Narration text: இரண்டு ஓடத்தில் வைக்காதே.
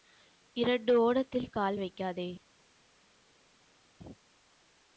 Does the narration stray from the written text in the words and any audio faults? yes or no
yes